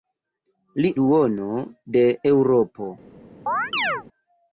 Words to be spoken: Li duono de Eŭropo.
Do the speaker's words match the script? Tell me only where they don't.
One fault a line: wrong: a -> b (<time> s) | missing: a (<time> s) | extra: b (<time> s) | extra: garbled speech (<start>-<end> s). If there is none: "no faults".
no faults